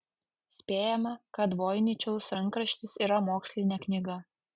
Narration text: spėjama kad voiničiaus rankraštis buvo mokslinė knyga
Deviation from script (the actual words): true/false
true